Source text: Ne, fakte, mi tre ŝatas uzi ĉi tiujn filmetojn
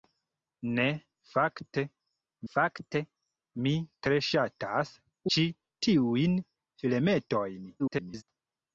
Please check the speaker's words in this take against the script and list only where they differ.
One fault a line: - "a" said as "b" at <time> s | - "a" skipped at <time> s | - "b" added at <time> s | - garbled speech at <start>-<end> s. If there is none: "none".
- "fakte" added at 2.5 s
- "uzi" skipped at 5.0 s
- garbled speech at 7.8-8.2 s